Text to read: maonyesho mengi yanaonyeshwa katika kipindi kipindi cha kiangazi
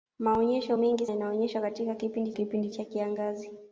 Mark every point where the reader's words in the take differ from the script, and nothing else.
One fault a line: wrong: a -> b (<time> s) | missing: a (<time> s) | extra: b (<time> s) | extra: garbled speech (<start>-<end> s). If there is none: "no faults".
no faults